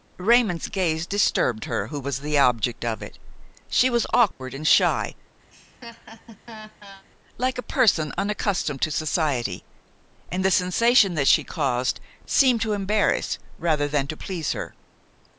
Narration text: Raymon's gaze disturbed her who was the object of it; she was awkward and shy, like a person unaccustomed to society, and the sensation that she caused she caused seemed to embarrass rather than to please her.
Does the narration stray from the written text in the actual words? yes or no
yes